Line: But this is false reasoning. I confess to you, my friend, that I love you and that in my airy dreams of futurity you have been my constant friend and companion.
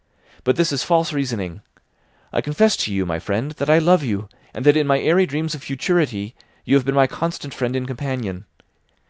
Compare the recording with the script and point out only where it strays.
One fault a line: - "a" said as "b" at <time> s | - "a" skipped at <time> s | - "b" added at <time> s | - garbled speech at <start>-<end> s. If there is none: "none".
none